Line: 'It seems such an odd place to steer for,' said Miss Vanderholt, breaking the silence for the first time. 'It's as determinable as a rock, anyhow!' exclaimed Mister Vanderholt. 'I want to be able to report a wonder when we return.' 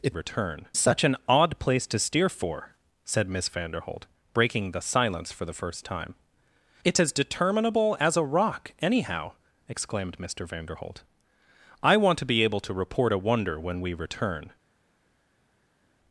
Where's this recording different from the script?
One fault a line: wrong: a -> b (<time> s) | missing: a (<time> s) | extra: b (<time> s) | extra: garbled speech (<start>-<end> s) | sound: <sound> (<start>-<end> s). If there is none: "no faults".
wrong: seems -> return (0.1 s)